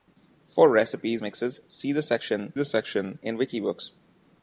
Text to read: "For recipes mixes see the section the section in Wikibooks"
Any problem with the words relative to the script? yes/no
no